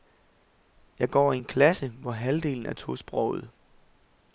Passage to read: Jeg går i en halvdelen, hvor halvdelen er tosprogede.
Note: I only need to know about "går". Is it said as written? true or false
true